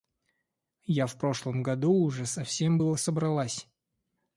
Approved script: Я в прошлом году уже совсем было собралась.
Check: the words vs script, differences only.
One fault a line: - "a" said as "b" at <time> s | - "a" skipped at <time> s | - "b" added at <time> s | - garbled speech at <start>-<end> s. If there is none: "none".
none